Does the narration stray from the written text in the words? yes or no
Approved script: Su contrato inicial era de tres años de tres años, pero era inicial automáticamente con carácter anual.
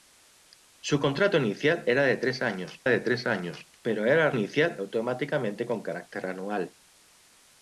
no